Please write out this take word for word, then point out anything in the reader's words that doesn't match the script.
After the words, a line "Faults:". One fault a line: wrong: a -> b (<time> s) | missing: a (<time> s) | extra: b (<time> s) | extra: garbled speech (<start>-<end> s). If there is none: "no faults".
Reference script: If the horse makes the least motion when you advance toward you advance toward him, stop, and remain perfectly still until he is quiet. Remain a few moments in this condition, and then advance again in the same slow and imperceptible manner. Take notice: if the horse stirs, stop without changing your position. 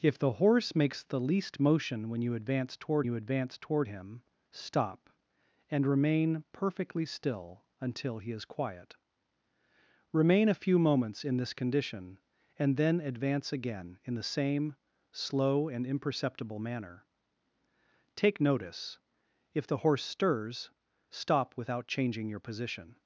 If the horse makes the least motion when you advance toward you advance toward him, stop, and remain perfectly still until he is quiet. Remain a few moments in this condition, and then advance again in the same slow and imperceptible manner. Take notice: if the horse stirs, stop without changing your position.
Faults:
no faults